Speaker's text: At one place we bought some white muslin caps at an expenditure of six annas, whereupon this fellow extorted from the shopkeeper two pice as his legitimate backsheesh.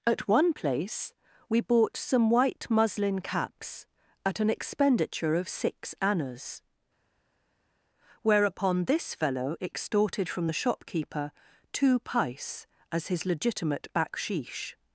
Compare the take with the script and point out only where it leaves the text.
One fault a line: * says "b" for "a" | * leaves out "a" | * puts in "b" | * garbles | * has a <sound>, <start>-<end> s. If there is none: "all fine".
all fine